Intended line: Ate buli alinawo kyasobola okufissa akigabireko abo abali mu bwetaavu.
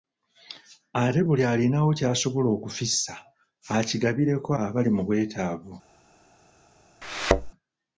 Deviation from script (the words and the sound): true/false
true